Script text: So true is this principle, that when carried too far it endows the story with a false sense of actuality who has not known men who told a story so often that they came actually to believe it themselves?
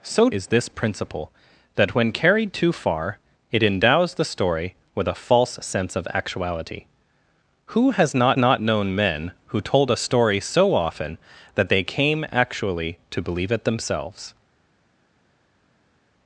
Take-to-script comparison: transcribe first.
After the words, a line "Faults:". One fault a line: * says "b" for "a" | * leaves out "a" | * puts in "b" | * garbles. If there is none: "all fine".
So is this principle, that when carried too far it endows the story with a false sense of actuality who has not not known men who told a story so often that they came actually to believe it themselves?
Faults:
* leaves out "true"
* puts in "not"